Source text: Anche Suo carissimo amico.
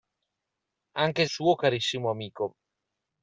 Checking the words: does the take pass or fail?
pass